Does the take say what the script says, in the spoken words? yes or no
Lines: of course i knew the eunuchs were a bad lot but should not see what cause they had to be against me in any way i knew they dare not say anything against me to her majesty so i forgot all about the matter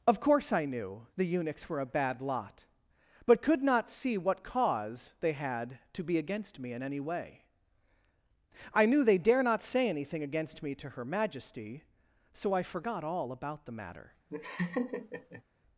no